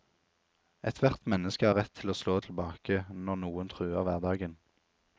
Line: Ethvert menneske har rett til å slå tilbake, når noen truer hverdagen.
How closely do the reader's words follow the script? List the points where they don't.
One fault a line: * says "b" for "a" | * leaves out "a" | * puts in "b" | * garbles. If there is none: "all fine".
all fine